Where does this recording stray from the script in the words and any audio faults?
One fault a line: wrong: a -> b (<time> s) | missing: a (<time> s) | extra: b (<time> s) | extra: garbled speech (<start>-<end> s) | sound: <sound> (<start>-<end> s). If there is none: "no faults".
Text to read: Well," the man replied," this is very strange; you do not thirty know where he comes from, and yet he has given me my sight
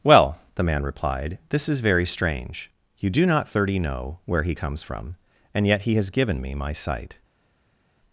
no faults